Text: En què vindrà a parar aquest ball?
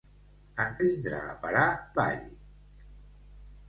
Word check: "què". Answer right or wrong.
wrong